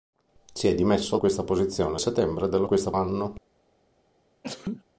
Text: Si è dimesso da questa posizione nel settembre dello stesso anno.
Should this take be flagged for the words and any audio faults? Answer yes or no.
yes